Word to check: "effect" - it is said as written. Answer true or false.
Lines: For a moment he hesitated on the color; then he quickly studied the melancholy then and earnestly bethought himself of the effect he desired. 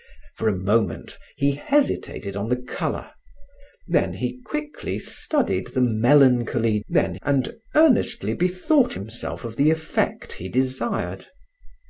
true